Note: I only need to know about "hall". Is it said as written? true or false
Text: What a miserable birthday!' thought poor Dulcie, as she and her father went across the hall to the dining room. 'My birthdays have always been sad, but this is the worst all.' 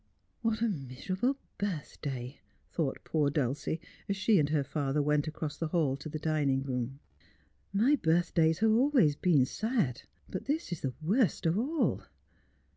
true